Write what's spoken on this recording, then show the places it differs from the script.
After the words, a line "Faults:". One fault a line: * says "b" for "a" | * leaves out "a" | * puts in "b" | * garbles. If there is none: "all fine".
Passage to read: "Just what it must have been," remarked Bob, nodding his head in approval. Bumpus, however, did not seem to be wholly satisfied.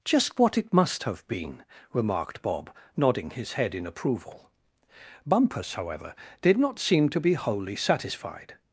"Just what it must have been," remarked Bob, nodding his head in approval. Bumpus, however, did not seem to be wholly satisfied.
Faults:
all fine